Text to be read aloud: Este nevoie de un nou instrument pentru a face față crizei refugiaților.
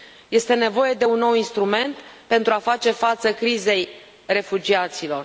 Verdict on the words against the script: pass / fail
pass